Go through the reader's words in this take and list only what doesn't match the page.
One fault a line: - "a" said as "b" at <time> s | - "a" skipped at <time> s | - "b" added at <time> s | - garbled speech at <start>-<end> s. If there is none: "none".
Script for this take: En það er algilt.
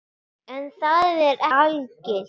none